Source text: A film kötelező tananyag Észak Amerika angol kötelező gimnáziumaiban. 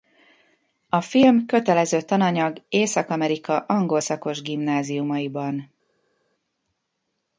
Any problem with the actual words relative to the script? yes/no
yes